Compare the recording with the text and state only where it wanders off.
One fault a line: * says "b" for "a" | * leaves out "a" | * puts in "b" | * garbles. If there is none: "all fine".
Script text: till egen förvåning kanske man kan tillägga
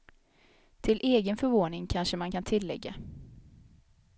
all fine